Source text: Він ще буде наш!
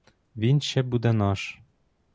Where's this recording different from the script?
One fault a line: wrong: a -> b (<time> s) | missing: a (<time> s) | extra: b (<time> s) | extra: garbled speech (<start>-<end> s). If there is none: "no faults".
no faults